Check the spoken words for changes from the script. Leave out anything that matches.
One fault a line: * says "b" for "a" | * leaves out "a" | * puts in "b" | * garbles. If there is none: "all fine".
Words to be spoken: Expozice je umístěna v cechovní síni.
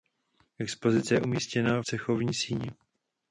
* leaves out "v"